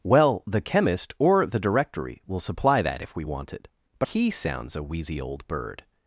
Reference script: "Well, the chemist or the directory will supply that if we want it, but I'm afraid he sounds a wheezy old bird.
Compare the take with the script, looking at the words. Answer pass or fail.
fail